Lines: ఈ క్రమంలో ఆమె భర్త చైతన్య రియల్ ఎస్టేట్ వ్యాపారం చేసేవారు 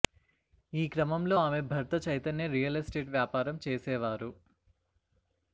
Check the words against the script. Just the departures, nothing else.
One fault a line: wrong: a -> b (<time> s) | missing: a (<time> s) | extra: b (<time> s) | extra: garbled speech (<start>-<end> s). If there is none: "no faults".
no faults